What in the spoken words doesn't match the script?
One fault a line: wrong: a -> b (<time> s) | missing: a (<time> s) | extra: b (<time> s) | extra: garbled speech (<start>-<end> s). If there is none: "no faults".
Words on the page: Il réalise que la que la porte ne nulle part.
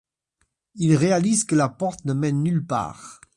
missing: que la (1.7 s)
extra: mène (2.1 s)